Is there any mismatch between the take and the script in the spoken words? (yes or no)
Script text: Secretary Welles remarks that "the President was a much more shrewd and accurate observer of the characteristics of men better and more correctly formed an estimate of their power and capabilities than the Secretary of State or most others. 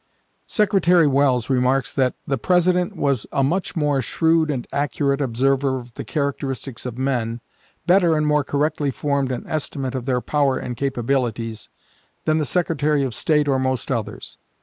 no